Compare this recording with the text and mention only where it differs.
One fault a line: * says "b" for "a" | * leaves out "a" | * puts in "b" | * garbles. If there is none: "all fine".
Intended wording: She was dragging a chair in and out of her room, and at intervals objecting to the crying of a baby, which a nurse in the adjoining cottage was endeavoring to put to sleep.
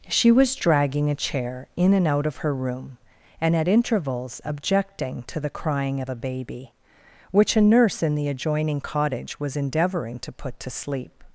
all fine